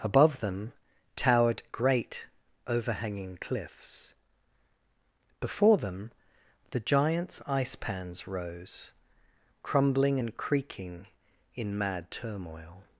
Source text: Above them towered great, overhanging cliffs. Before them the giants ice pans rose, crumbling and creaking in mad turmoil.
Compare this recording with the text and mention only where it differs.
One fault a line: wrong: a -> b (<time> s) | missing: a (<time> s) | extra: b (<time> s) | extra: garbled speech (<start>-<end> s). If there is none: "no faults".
no faults